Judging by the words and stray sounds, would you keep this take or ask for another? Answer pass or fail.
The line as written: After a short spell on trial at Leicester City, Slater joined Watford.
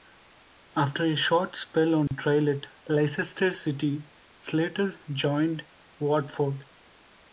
fail